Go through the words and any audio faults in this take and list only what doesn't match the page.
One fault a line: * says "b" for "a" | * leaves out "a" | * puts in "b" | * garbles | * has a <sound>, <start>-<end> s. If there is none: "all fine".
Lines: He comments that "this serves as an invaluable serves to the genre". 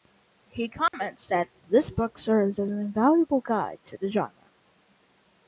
* has a dropout, 0.9-0.9 s
* puts in "book"
* says "guide" for "serves"